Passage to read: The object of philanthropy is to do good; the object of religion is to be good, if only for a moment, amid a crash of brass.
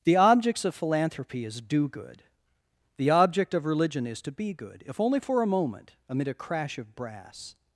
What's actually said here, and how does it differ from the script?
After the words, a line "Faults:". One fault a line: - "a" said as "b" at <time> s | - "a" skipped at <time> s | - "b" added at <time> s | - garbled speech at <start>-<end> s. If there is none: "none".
The objects of philanthropy is do good; the object of religion is to be good, if only for a moment, amid a crash of brass.
Faults:
- "object" said as "objects" at 0.1 s
- "to" skipped at 1.6 s